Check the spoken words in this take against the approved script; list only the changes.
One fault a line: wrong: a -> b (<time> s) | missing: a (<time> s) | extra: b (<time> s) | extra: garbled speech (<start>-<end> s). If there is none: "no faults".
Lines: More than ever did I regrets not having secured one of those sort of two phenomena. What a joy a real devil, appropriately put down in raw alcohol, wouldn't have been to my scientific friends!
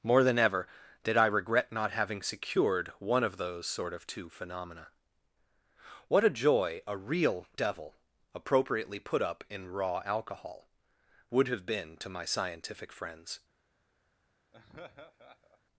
wrong: regrets -> regret (1.3 s)
wrong: down -> up (9.2 s)
wrong: wouldn't -> would (11.3 s)